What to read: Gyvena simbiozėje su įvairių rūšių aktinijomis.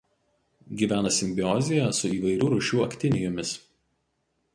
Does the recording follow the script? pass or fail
pass